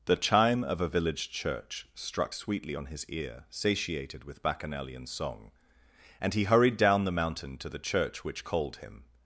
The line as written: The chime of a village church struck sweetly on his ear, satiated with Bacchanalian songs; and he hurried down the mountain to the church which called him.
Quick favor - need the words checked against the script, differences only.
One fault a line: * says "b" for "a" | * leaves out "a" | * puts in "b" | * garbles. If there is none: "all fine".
* says "song" for "songs"